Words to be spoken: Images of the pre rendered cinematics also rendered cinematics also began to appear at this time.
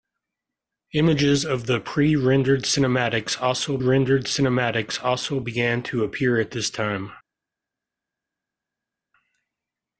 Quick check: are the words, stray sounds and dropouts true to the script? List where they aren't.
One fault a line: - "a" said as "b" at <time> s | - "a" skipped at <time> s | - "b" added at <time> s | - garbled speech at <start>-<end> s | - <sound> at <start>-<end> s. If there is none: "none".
none